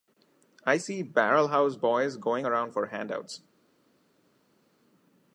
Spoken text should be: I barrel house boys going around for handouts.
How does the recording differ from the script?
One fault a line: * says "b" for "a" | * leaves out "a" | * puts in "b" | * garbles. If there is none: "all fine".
* puts in "see"